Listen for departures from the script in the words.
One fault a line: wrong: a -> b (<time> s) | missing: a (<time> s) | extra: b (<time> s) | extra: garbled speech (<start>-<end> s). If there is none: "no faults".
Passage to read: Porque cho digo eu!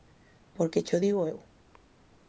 no faults